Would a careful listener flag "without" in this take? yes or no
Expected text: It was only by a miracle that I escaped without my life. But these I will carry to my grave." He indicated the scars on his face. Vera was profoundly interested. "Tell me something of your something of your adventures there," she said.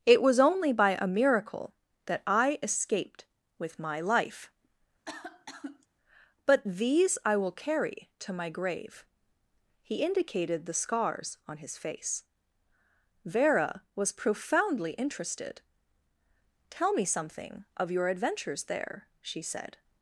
yes